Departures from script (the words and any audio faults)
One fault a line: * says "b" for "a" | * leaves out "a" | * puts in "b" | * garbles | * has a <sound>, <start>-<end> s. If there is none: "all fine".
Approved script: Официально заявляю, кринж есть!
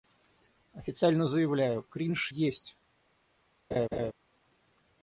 * has a laugh, 3.7-4.1 s